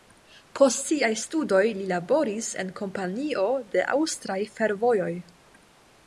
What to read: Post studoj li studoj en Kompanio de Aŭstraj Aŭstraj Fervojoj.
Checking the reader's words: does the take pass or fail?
fail